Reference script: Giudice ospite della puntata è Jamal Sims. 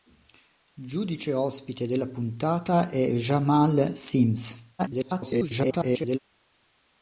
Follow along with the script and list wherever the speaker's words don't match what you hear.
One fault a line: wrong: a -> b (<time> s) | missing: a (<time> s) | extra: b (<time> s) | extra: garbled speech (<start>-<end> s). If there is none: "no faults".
extra: garbled speech (4.8-6.2 s)